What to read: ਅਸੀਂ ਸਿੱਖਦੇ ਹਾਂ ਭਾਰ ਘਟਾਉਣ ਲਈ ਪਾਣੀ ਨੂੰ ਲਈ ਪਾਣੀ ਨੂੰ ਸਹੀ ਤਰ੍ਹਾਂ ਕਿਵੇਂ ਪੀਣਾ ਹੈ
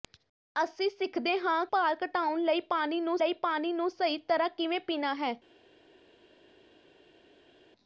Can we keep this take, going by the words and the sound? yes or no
yes